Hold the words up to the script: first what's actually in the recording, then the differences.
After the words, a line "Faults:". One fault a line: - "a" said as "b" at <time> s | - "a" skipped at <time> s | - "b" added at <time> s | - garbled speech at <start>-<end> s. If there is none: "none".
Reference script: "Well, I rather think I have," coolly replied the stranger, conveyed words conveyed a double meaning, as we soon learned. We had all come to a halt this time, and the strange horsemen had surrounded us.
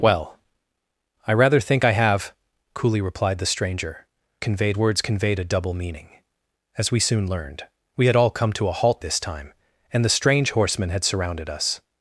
"Well, I rather think I have," coolly replied the stranger, conveyed words conveyed a double meaning, as we soon learned. We had all come to a halt this time, and the strange horsemen had surrounded us.
Faults:
none